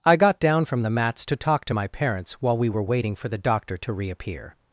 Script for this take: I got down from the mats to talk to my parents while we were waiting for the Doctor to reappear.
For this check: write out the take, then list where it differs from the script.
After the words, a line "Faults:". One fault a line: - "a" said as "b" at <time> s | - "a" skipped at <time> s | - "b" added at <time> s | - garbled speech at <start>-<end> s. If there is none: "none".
I got down from the mats to talk to my parents while we were waiting for the Doctor to reappear.
Faults:
none